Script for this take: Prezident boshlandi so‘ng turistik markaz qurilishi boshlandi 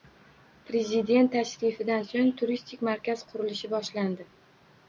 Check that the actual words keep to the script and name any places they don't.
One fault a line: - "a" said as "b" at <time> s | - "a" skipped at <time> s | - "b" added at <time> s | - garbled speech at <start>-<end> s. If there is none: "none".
- "boshlandi" said as "tashrifidan" at 1.4 s